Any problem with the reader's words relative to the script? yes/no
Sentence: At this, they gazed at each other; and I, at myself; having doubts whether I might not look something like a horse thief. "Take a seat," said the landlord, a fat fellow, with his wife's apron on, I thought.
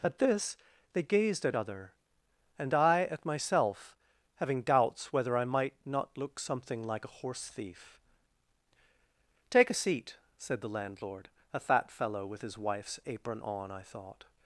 yes